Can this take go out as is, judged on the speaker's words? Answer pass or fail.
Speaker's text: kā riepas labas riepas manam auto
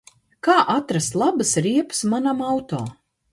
fail